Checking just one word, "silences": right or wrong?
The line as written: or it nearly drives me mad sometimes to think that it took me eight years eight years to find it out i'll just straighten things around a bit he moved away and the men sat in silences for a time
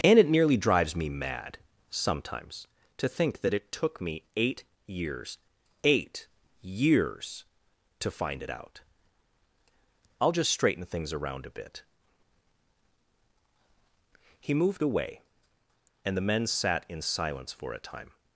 wrong